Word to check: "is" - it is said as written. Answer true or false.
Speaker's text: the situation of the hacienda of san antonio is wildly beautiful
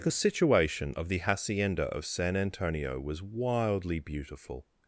false